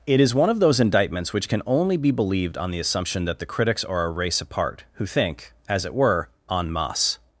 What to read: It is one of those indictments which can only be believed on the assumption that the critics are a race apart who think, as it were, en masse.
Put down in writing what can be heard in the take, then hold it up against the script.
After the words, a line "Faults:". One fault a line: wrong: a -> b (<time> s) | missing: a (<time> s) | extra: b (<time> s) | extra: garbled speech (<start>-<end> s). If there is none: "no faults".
It is one of those indictments which can only be believed on the assumption that the critics are a race apart who think, as it were, en masse.
Faults:
no faults